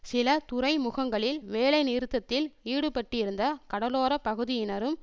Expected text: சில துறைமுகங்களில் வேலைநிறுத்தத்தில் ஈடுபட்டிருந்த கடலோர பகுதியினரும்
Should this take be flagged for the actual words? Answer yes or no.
no